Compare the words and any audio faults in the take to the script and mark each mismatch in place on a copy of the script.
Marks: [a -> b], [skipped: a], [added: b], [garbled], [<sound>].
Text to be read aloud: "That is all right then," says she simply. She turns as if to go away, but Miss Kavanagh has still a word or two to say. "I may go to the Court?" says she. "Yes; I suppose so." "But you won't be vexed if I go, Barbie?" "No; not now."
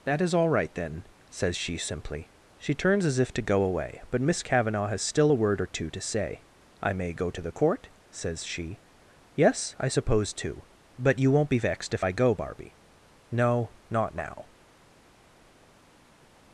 "That is all right then," says she simply. She turns as if to go away, but Miss Kavanagh has still a word or two to say. "I may go to the Court?" says she. "Yes; I suppose [so." -> too] "But you won't be vexed if I go, Barbie?" "No; not now."